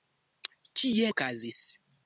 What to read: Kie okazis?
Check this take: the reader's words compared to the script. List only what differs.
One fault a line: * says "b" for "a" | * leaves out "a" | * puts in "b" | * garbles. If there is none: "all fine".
all fine